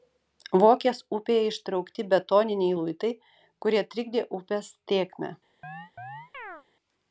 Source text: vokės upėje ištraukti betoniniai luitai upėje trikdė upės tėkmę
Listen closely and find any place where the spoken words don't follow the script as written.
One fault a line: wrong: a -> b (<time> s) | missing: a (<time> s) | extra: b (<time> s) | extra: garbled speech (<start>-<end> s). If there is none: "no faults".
wrong: upėje -> kurie (3.6 s)